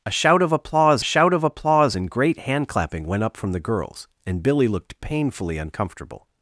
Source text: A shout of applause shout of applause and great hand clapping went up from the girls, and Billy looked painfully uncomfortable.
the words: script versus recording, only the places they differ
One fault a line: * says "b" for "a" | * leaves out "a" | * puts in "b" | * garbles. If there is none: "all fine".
all fine